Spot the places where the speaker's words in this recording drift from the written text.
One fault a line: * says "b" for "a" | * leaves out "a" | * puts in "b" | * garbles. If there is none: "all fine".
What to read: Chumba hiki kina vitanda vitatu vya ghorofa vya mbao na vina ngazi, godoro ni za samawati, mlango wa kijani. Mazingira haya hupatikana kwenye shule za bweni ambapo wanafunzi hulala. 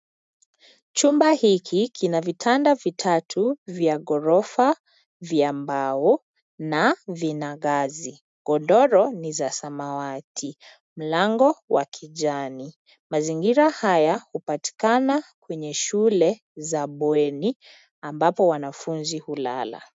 all fine